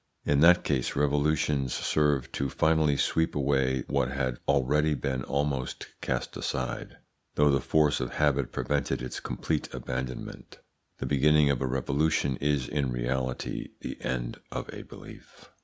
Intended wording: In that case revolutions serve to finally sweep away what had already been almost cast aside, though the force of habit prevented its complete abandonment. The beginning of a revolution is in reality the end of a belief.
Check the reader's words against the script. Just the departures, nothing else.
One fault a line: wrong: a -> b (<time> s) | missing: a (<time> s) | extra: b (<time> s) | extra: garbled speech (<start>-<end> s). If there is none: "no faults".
no faults